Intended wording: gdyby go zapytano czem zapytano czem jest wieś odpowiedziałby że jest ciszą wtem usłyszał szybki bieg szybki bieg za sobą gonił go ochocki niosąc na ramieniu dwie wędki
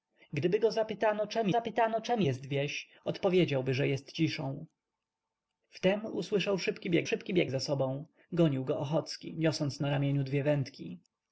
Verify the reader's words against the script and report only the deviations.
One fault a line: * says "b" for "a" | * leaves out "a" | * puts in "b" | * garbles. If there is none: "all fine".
all fine